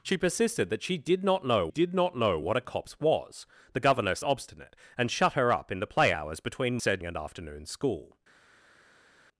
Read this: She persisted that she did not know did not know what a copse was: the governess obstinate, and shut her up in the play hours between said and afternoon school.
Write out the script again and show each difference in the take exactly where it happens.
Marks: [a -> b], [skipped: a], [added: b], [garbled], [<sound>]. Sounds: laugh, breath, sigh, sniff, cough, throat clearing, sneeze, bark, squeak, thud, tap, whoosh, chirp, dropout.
She persisted that she did not know did not know what a copse was: the governess obstinate, and shut her up in the play hours between said and afternoon school.